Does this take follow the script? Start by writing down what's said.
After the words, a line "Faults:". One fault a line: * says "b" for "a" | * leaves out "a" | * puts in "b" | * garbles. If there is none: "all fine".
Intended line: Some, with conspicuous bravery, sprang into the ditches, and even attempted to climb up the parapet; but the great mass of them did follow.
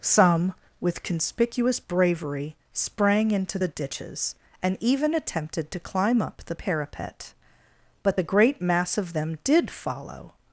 Some, with conspicuous bravery, sprang into the ditches, and even attempted to climb up the parapet; but the great mass of them did follow.
Faults:
all fine